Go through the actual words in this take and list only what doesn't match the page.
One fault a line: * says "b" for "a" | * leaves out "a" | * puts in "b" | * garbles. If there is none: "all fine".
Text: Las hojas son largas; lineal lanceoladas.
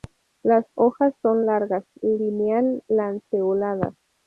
all fine